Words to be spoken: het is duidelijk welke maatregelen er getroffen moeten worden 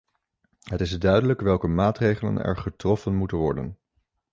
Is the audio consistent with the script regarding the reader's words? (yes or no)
yes